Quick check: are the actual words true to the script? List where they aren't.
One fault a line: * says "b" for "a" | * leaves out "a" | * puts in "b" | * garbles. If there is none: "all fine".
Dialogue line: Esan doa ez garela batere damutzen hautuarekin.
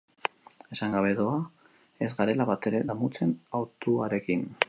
* puts in "gabe"